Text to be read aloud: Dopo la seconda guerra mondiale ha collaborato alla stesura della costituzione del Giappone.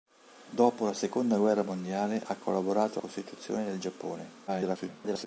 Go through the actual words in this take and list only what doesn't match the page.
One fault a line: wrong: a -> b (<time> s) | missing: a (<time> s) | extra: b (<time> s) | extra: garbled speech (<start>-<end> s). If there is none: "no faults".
missing: alla stesura della (3.0 s)
extra: garbled speech (4.5-5.3 s)